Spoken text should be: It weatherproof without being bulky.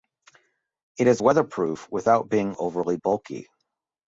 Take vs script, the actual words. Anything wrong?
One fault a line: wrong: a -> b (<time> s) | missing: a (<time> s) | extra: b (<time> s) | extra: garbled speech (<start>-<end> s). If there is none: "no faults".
extra: is (1.1 s)
extra: overly (2.6 s)